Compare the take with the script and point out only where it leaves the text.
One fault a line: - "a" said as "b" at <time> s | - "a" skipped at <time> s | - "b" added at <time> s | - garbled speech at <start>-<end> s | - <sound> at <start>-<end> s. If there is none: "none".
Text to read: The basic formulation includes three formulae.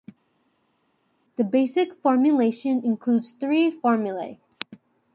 none